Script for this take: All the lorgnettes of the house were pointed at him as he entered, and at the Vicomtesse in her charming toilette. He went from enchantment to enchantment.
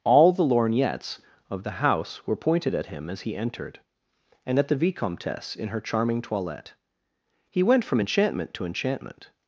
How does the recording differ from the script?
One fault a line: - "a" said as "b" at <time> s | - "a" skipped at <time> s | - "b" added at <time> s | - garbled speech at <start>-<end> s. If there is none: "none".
none